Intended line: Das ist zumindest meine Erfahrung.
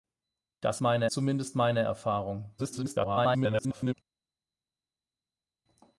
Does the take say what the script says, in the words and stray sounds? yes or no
no